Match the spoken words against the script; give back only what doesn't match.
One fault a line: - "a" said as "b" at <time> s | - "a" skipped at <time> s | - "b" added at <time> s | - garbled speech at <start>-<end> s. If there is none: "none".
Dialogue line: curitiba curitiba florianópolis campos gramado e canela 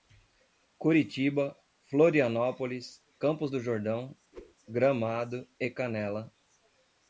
- "curitiba" skipped at 1.6 s
- "do jordão" added at 3.5 s